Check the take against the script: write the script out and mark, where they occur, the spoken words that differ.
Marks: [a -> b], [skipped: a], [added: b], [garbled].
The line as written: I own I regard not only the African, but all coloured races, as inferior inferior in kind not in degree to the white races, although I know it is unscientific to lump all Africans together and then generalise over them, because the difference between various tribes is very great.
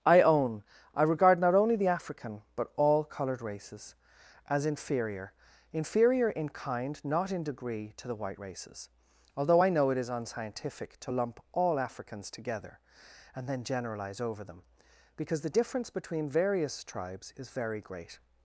I own I regard not only the African, but all coloured races, as inferior inferior in kind not in degree to the white races, although I know it is unscientific to lump all Africans together and then generalise over them, because the difference between various tribes is very great.